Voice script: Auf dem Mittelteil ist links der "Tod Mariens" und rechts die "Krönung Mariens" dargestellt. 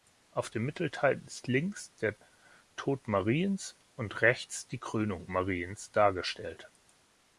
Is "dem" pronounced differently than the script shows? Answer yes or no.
no